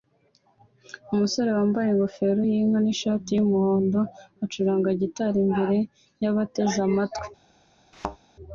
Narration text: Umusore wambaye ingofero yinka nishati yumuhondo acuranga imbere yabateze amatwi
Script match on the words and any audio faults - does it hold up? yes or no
no